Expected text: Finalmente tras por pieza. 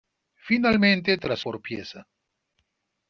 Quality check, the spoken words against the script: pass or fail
pass